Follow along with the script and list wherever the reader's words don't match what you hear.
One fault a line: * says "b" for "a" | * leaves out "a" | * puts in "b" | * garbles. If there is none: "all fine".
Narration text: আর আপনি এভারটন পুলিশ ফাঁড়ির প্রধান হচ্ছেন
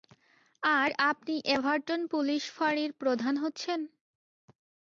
all fine